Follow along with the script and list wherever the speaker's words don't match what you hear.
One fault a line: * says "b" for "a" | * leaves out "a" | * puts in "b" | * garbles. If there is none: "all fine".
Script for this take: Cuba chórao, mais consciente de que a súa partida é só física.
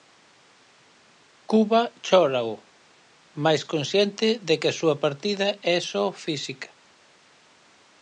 all fine